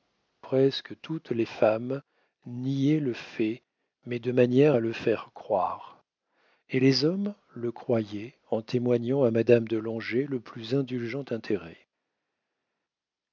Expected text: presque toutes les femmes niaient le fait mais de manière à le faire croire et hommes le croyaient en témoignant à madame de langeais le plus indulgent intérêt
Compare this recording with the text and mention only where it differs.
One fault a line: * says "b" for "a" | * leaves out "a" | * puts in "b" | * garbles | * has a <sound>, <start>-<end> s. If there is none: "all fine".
* puts in "les"